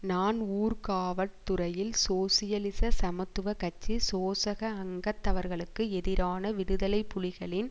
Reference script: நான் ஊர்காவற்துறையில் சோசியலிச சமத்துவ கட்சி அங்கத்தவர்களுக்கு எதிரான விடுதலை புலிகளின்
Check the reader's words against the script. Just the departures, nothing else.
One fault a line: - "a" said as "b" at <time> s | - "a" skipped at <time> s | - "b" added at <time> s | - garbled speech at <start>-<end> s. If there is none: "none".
- "சோசக" added at 4.0 s